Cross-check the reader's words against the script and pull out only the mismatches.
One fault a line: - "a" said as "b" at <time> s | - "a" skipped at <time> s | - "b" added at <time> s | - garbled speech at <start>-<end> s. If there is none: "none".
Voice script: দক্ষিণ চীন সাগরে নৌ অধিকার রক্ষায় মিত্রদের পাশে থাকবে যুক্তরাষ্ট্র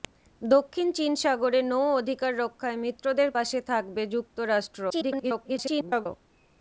- garbled speech at 4.9-6.1 s